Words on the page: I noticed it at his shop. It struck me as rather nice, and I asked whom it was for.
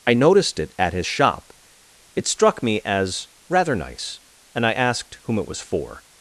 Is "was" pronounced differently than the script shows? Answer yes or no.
no